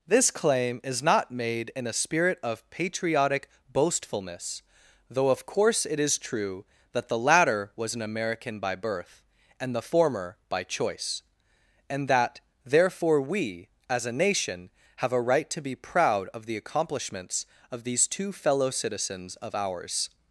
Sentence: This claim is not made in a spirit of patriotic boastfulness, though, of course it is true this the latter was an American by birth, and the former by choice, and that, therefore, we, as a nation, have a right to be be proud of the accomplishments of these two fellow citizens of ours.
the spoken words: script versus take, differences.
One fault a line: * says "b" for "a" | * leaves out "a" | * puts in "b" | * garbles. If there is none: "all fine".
* says "that" for "this"
* leaves out "be"